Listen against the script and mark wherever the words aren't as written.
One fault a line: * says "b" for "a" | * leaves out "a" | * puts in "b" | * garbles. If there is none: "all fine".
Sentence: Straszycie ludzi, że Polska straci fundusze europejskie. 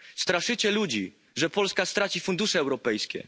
all fine